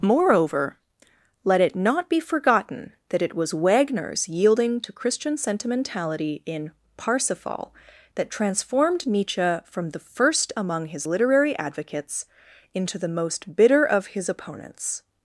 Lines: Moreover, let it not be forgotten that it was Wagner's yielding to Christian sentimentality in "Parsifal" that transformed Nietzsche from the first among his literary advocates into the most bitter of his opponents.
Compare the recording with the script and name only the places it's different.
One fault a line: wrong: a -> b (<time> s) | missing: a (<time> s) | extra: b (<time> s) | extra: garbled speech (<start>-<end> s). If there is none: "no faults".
no faults